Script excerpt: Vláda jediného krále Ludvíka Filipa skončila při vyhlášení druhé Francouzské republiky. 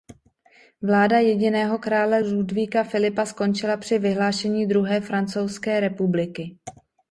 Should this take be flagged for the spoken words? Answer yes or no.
no